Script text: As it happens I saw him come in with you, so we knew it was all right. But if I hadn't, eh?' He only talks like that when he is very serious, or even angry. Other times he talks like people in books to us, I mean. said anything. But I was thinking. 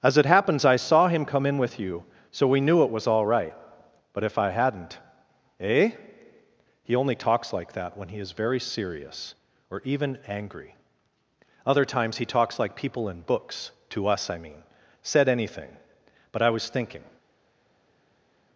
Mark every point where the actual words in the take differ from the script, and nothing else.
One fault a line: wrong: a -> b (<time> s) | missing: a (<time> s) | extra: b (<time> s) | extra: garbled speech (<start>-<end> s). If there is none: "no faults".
no faults